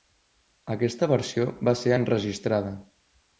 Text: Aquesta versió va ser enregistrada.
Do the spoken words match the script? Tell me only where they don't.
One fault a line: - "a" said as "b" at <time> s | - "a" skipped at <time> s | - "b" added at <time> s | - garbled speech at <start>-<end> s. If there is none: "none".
none